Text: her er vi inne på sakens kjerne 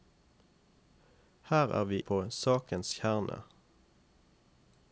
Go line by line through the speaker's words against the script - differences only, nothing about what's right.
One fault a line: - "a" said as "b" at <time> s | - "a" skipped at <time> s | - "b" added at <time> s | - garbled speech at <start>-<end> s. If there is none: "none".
- "inne" skipped at 2.0 s